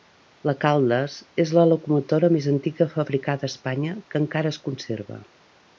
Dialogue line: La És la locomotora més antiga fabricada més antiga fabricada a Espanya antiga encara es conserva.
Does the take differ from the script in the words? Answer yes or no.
yes